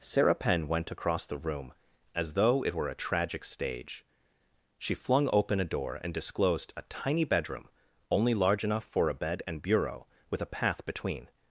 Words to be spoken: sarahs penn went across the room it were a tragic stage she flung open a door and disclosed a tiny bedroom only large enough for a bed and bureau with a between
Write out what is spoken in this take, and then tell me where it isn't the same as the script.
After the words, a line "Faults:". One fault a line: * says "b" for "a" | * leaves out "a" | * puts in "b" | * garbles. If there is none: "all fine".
sarah penn went across the room as though it were a tragic stage she flung open a door and disclosed a tiny bedroom only large enough for a bed and bureau with a path between
Faults:
* says "sarah" for "sarahs"
* puts in "as though"
* puts in "path"